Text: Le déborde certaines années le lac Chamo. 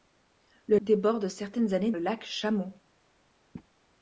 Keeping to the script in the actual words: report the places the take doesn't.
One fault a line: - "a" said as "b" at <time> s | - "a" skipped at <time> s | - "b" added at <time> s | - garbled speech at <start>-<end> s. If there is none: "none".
none